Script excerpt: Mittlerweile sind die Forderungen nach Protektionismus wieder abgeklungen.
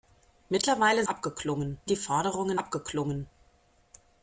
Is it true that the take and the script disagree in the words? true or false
true